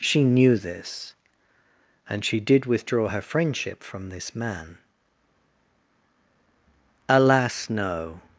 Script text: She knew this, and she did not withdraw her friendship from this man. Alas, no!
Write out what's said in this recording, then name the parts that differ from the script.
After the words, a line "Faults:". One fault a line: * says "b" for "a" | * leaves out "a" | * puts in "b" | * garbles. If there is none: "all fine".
She knew this, and she did withdraw her friendship from this man. Alas, no!
Faults:
* leaves out "not"